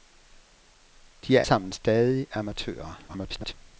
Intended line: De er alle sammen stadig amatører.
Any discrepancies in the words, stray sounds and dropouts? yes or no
yes